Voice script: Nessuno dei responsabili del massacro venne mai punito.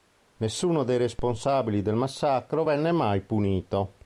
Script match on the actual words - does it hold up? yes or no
yes